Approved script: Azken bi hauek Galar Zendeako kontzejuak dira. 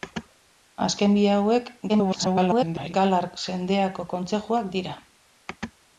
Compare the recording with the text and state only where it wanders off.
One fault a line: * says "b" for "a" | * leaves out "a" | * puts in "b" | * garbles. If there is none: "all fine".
* garbles